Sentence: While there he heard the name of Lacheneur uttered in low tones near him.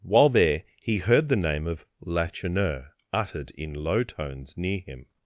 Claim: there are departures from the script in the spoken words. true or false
false